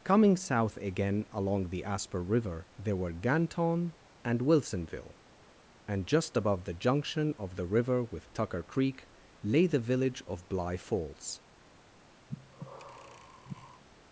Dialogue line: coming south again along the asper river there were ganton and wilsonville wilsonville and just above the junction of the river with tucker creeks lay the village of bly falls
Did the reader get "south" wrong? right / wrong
right